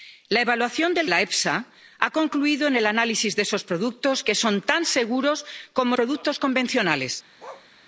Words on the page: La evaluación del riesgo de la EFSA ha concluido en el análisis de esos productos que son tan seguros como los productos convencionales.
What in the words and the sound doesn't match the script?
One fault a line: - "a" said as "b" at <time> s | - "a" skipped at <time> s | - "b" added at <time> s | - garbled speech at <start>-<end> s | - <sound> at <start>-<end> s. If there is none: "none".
- "riesgo de" skipped at 1.1 s
- "los" skipped at 6.0 s
- bark at 7.4-7.7 s